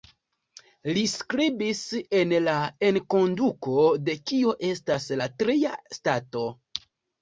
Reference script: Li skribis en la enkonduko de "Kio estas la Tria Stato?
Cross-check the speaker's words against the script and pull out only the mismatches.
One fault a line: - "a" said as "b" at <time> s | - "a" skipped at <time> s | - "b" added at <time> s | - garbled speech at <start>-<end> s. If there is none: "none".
none